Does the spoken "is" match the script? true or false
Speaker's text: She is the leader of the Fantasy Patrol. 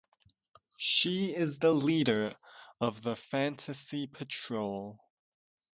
true